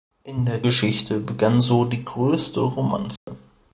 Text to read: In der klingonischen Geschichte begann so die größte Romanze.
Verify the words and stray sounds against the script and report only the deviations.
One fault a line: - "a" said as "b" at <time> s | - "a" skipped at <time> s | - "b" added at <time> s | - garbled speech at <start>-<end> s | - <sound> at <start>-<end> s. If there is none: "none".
- "klingonischen" skipped at 0.6 s
- dropout at 3.2-3.3 s